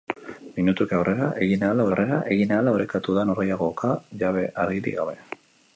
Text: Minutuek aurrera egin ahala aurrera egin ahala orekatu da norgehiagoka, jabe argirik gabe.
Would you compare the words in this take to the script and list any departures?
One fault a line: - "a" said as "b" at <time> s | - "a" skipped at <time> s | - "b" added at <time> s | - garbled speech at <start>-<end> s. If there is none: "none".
none